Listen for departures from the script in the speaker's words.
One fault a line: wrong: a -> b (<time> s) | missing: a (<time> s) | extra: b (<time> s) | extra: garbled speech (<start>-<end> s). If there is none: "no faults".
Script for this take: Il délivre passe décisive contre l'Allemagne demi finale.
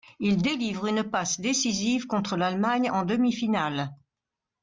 extra: une (0.9 s)
extra: en (2.9 s)